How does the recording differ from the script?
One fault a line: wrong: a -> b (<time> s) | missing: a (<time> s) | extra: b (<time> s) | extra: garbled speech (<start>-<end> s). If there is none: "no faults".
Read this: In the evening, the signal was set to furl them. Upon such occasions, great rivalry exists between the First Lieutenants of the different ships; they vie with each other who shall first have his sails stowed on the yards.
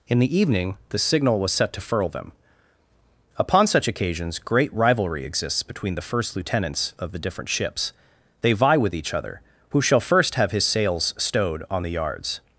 no faults